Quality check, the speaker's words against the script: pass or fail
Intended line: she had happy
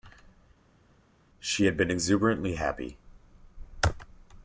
fail